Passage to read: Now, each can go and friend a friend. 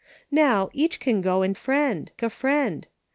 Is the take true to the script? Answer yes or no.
yes